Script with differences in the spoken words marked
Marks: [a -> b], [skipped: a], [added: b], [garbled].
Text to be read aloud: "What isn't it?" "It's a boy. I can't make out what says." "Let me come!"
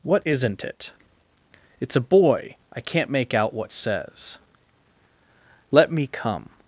"What isn't it?" "It's a boy. I can't make out what says." "Let me come!"